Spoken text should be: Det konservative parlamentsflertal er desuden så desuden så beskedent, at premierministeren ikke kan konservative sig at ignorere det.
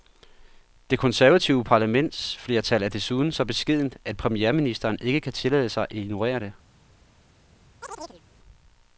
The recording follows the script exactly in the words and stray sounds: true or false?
false